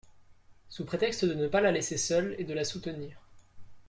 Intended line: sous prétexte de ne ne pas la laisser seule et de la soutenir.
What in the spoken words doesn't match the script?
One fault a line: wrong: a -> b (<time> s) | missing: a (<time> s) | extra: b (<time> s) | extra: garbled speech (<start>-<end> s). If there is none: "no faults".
missing: ne (1.5 s)